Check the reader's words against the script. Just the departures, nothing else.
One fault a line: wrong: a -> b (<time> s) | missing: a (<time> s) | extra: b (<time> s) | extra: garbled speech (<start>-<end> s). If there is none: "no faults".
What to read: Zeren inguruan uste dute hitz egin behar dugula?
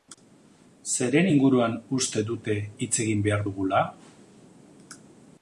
no faults